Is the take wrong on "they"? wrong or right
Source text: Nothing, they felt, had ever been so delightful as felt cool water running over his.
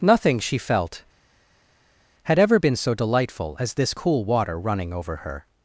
wrong